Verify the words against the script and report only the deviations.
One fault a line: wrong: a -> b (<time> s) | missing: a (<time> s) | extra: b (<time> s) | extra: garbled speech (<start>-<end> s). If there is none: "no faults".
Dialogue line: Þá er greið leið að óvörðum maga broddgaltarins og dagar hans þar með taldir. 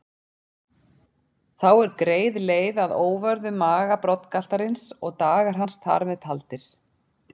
no faults